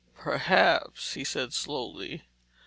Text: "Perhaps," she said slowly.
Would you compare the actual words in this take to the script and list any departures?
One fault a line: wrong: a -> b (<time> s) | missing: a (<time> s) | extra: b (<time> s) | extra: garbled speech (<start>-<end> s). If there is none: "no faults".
wrong: she -> he (1.1 s)